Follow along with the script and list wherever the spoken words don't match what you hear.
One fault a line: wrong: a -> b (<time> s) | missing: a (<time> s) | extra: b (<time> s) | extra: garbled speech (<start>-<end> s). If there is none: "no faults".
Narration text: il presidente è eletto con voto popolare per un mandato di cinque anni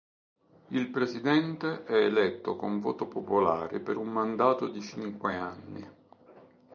no faults